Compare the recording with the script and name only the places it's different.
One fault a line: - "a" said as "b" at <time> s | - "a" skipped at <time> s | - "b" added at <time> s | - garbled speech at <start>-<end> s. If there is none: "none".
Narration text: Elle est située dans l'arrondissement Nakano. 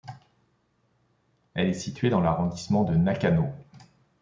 - "de" added at 2.8 s